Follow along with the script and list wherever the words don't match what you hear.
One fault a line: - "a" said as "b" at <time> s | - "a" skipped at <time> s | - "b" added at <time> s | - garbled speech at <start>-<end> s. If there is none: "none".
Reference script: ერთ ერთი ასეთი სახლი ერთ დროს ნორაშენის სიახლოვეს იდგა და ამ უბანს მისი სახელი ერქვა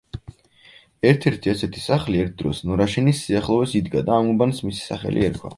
none